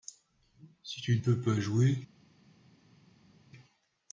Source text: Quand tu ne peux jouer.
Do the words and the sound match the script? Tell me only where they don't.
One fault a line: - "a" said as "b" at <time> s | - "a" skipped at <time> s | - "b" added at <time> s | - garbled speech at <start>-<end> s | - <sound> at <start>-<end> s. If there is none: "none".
- "Quand" said as "Si" at 0.8 s
- "pas" added at 1.4 s